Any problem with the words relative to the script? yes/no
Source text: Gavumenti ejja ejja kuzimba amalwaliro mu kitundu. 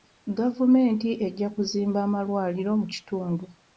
yes